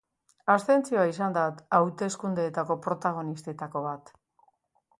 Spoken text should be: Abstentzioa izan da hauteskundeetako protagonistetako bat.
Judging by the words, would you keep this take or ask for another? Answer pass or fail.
pass